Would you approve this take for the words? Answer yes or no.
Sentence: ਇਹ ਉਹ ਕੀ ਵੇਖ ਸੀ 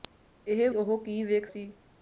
yes